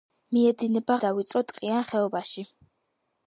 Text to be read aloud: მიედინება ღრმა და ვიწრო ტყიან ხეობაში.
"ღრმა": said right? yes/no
no